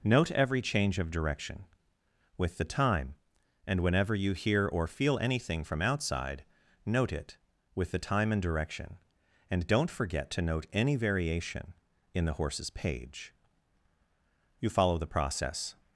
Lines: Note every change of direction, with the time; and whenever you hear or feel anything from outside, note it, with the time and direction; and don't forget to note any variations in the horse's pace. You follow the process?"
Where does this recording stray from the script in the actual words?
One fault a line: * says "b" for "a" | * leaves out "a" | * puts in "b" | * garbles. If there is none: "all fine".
* says "variation" for "variations"
* says "page" for "pace"